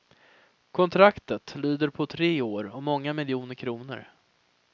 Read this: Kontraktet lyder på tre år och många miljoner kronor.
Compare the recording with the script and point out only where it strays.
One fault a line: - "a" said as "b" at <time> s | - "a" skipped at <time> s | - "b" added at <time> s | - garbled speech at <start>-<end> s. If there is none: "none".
none